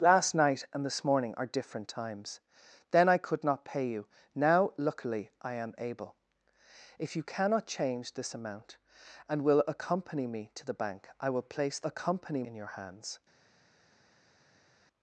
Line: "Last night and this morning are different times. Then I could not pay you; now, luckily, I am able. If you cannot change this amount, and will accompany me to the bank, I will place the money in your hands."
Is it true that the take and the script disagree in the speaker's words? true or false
true